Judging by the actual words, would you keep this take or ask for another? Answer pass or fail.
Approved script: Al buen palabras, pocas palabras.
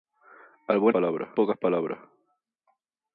pass